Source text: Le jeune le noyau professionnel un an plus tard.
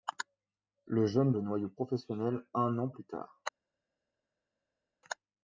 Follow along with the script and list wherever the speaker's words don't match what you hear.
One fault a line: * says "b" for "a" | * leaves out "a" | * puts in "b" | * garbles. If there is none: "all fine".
all fine